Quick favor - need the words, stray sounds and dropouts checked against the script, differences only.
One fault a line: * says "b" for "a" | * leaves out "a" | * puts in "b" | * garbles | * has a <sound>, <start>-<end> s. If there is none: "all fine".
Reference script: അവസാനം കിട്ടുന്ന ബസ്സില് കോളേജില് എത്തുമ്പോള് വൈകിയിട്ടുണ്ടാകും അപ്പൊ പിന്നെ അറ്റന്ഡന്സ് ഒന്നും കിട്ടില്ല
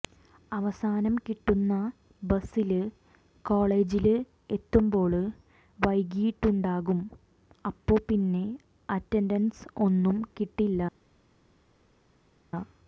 all fine